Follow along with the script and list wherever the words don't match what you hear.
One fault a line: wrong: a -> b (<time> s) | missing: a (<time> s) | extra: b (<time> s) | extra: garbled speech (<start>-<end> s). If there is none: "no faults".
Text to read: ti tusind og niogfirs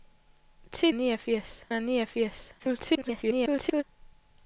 wrong: tusind -> niogfirs (0.9 s)
extra: garbled speech (2.6-3.8 s)